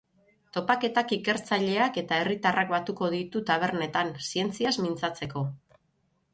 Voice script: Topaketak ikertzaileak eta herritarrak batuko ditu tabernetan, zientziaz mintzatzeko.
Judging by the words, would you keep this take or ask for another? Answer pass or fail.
pass